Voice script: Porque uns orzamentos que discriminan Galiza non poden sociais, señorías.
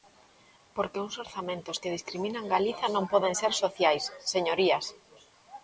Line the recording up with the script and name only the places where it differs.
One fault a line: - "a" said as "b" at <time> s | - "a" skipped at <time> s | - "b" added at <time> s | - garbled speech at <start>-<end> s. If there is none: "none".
- "ser" added at 3.4 s